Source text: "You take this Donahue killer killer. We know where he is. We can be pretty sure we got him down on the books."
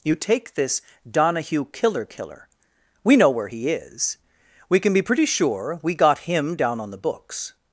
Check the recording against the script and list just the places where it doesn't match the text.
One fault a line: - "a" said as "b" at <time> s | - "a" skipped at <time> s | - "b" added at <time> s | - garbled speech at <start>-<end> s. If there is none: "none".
none